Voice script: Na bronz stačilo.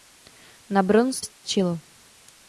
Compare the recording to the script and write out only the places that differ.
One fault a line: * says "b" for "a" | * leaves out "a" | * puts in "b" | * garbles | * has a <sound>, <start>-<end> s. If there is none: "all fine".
* has a dropout, 1.3-1.4 s